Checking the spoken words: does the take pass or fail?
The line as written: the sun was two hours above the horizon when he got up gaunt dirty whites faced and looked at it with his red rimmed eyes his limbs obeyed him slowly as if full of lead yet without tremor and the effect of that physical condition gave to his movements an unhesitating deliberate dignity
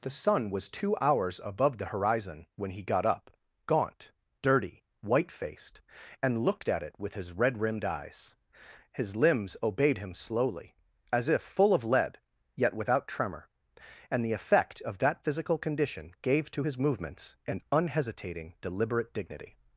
fail